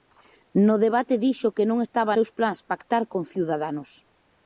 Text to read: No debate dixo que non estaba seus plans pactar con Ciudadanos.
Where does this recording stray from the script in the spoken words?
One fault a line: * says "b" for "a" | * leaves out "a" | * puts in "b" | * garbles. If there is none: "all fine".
all fine